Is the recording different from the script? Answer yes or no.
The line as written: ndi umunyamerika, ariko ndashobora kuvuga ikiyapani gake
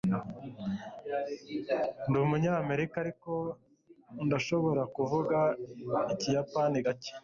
no